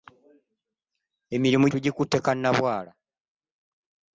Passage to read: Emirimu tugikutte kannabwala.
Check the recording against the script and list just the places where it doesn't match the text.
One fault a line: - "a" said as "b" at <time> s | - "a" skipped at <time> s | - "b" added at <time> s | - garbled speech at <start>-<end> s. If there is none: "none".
none